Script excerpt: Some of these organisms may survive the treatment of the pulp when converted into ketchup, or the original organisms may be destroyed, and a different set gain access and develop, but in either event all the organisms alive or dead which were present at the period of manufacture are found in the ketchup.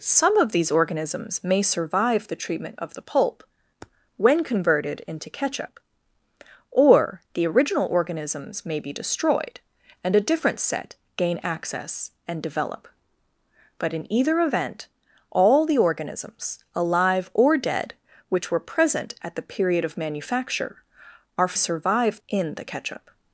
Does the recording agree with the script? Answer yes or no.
no